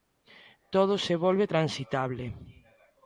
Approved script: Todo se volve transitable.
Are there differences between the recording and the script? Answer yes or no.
no